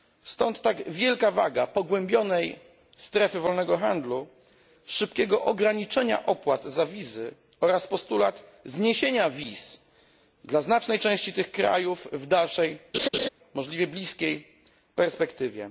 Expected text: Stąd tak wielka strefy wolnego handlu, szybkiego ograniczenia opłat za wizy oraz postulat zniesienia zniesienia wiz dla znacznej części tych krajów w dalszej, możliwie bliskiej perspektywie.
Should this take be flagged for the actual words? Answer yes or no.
yes